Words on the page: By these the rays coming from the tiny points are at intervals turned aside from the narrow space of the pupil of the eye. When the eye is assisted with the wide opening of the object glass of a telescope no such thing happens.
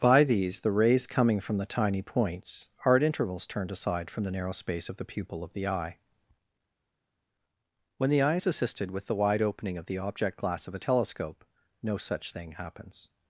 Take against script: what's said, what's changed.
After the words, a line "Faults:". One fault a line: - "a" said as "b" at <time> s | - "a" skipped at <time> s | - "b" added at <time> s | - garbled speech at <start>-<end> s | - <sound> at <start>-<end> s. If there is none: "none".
By these the rays coming from the tiny points are at intervals turned aside from the narrow space of the pupil of the eye. When the eye is assisted with the wide opening of the object glass of a telescope no such thing happens.
Faults:
none